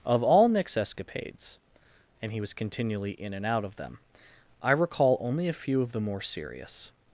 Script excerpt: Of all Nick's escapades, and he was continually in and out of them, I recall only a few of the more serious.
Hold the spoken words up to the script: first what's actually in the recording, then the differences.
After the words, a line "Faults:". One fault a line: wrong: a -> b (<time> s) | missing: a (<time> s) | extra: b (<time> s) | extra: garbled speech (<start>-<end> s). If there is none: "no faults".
Of all Nick's escapades, and he was continually in and out of them, I recall only a few of the more serious.
Faults:
no faults